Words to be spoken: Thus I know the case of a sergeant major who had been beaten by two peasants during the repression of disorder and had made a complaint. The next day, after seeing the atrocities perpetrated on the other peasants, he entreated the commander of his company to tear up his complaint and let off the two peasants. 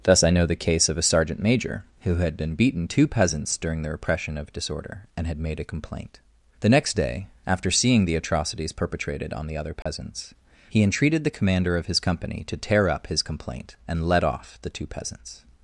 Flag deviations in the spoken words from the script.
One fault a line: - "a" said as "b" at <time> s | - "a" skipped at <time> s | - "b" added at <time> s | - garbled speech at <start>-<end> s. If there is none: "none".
- "by" skipped at 2.9 s